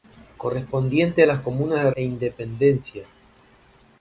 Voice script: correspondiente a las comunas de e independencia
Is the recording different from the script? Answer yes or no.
no